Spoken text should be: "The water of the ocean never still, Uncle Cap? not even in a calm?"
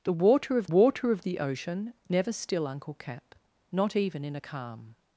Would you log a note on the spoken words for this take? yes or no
yes